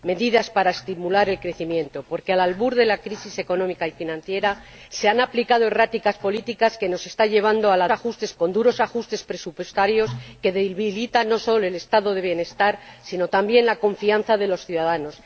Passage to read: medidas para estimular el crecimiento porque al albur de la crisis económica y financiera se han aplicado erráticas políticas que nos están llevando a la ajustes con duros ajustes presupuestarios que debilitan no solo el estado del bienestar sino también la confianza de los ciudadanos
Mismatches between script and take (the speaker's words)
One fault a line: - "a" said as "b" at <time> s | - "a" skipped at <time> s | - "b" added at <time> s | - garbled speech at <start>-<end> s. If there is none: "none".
none